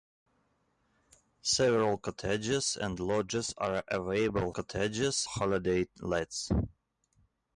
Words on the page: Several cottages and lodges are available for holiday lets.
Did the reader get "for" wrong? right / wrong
wrong